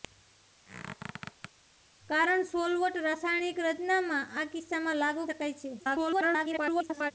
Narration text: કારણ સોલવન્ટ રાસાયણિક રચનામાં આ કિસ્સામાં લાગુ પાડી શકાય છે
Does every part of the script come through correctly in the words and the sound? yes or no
no